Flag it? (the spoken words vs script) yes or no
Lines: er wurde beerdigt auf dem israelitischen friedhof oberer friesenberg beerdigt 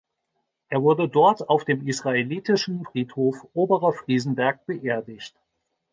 yes